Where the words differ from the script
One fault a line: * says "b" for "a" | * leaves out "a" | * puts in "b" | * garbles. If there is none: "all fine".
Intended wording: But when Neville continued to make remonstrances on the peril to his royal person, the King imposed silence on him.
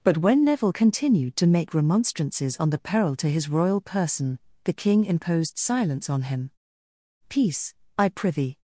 * puts in "Peace I prithee"